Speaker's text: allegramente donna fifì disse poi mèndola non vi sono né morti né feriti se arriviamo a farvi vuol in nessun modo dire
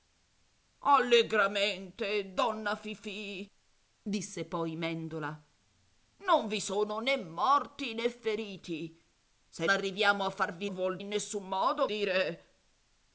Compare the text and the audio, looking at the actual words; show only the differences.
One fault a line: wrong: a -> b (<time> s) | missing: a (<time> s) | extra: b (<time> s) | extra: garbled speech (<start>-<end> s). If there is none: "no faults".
no faults